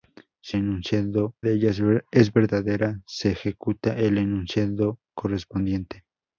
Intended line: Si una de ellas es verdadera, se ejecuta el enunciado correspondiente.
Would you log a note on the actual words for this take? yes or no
yes